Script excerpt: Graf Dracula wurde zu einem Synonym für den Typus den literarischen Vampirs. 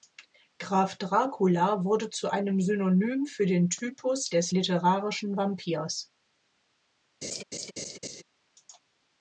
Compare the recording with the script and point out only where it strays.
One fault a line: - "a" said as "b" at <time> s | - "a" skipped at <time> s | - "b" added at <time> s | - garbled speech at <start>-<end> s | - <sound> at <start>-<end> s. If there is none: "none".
- "den" said as "des" at 4.3 s
- laugh at 7.2-8.2 s